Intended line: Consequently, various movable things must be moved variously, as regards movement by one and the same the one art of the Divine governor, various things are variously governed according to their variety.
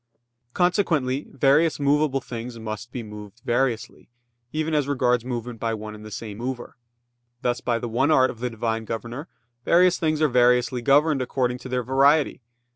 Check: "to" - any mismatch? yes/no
no